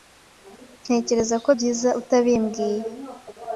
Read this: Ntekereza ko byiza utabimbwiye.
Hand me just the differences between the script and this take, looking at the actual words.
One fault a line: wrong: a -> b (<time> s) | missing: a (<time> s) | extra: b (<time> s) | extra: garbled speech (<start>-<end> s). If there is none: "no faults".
no faults